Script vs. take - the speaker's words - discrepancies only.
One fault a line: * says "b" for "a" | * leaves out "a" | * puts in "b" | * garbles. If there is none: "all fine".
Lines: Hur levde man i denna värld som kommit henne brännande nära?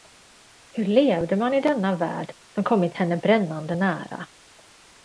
all fine